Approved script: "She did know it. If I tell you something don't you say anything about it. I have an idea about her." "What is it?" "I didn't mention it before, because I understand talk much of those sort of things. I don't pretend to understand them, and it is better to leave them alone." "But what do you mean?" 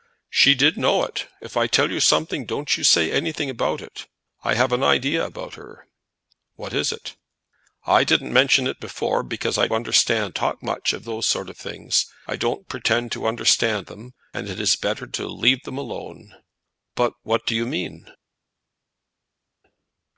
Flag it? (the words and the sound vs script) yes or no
no